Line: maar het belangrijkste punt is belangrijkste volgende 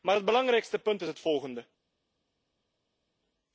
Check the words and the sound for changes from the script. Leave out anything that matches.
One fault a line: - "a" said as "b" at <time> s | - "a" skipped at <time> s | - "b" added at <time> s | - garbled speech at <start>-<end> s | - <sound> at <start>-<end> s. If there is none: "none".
- "belangrijkste" said as "het" at 1.1 s